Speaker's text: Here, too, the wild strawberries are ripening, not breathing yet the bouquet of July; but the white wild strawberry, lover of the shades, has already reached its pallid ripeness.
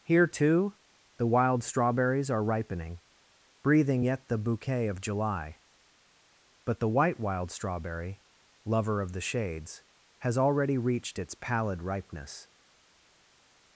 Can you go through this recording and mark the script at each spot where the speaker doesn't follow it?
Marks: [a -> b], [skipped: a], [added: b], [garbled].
Here, too, the wild strawberries are ripening, [skipped: not] breathing yet the bouquet of July; but the white wild strawberry, lover of the shades, has already reached its pallid ripeness.